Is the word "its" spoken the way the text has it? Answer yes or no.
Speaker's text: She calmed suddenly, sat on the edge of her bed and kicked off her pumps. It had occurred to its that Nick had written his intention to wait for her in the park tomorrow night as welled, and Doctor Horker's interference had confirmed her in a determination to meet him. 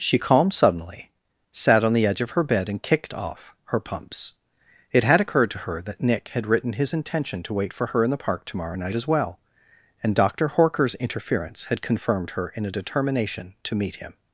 no